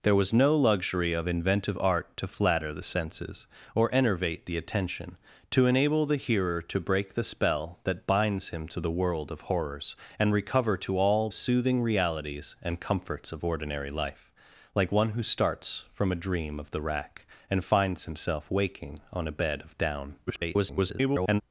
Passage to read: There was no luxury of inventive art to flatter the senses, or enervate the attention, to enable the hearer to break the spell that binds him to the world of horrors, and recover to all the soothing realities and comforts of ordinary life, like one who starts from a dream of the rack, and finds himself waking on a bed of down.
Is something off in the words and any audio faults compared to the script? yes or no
yes